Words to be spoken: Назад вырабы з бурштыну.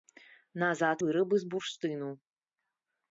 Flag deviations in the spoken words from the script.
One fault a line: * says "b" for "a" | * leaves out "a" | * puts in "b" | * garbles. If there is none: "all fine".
all fine